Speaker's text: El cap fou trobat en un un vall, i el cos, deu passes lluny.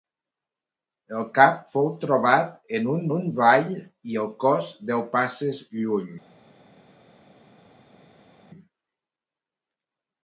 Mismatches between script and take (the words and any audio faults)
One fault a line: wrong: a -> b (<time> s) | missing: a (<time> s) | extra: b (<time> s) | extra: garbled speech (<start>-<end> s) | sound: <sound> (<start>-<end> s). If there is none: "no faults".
no faults